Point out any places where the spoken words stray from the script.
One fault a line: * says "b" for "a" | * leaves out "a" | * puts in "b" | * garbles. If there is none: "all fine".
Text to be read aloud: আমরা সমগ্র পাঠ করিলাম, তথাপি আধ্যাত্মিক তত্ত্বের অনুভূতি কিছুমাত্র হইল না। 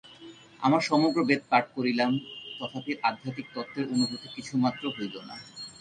* puts in "বেদ"